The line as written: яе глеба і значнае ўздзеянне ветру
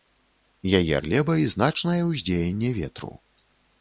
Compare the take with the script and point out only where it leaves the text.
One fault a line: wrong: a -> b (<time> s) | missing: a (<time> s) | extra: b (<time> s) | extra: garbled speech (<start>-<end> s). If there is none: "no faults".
no faults